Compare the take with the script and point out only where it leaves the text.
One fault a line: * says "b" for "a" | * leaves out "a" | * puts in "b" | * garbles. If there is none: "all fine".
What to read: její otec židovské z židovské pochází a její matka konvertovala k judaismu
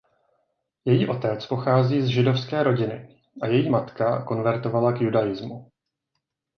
* says "pochází" for "židovské"
* says "rodiny" for "pochází"